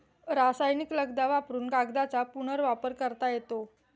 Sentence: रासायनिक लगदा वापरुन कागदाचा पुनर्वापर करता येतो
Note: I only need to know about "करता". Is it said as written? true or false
true